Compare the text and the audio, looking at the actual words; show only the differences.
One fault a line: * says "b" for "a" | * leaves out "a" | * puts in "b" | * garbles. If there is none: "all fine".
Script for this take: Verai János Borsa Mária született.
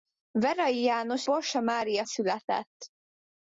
all fine